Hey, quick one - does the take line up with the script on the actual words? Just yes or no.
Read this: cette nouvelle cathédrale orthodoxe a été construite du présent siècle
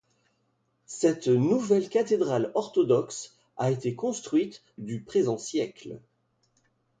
yes